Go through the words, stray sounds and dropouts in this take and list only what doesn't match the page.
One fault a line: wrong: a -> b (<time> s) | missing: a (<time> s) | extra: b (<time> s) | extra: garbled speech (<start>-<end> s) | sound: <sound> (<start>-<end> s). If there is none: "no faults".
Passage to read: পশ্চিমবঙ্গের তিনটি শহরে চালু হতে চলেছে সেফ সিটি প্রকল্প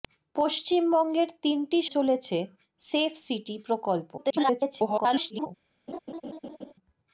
missing: শহরে চালু হতে (1.8 s)
extra: garbled speech (4.2-5.5 s)
sound: laugh (5.9-6.7 s)